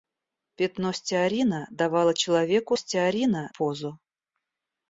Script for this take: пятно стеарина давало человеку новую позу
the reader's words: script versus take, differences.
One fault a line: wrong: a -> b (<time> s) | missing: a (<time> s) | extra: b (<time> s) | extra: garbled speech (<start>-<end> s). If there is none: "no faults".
wrong: новую -> стеарина (2.8 s)